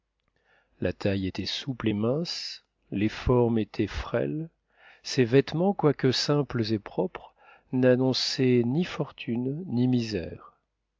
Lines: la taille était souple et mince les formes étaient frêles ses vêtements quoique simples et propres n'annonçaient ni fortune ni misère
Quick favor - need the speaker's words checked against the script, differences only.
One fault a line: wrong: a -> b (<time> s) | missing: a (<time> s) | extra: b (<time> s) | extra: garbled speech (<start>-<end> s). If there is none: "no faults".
no faults